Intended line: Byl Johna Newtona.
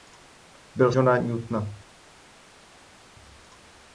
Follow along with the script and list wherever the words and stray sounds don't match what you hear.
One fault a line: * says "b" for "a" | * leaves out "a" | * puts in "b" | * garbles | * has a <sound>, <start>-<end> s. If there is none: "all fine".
all fine